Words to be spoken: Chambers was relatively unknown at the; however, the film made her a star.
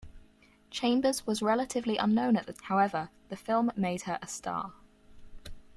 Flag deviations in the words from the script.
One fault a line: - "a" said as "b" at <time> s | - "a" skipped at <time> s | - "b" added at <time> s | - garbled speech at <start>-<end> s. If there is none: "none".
none